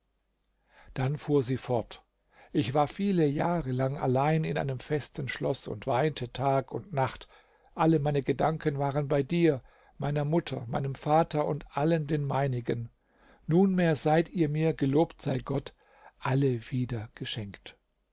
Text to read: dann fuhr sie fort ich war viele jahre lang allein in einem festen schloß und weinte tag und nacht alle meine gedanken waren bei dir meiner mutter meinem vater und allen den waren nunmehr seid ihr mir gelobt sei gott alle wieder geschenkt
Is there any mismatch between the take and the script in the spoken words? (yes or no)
yes